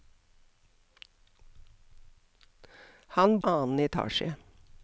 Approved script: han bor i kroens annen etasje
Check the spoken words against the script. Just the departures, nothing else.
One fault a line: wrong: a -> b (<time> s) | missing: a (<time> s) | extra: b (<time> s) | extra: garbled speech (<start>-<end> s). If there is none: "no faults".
missing: bor i kroens (3.4 s)